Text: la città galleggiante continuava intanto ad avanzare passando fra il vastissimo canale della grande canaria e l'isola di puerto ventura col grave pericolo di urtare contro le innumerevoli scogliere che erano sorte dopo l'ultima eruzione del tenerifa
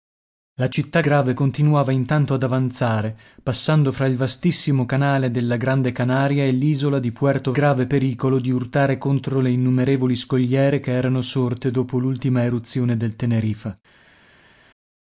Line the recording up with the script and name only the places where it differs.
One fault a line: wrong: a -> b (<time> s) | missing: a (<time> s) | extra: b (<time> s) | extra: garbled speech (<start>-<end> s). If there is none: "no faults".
wrong: galleggiante -> grave (1.0 s)
missing: ventura col (7.5 s)